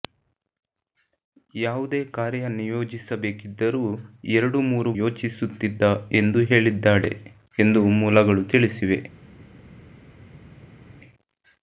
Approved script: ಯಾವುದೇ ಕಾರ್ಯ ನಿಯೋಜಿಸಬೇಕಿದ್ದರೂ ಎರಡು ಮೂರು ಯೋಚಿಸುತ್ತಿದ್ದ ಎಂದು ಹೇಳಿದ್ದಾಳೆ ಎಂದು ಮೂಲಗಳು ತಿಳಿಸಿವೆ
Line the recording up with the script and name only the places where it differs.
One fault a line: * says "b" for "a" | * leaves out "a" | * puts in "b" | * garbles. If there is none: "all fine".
all fine